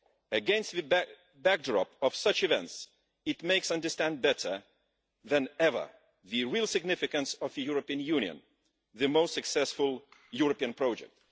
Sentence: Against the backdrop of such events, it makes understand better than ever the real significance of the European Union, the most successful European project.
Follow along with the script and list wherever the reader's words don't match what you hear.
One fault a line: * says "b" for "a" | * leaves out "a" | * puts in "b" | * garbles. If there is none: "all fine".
all fine